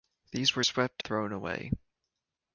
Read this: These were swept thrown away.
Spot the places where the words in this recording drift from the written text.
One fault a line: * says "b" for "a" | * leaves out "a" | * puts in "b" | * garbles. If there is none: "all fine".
all fine